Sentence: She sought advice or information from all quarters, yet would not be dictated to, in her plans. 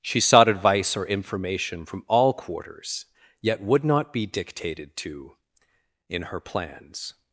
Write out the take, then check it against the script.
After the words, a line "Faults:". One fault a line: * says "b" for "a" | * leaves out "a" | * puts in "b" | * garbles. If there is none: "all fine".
She sought advice or information from all quarters, yet would not be dictated to, in her plans.
Faults:
all fine